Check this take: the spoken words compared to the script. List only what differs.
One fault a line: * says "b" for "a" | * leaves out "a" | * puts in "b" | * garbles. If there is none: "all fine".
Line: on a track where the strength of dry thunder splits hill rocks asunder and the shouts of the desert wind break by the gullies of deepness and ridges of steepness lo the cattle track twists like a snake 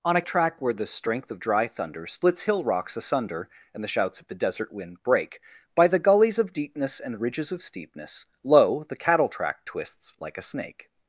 all fine